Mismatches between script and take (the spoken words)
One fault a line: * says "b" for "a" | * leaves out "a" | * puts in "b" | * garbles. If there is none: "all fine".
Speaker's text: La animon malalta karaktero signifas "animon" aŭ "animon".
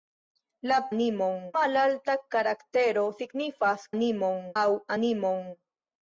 all fine